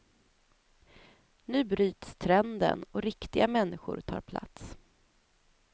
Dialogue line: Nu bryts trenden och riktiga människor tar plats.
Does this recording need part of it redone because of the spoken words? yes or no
no